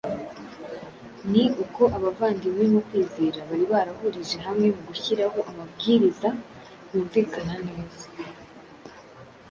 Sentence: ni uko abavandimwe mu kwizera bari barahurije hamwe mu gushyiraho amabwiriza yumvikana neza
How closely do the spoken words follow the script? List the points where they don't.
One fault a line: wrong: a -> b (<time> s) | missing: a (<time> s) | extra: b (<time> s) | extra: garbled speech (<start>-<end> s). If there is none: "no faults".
no faults